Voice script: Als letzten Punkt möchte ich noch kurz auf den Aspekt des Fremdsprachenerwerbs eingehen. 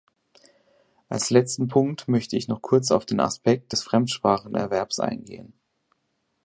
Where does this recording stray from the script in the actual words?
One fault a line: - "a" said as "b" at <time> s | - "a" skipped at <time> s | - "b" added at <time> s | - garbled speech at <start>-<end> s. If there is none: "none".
none